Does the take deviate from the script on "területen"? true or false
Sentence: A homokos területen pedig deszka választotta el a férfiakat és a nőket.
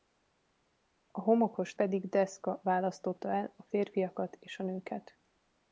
true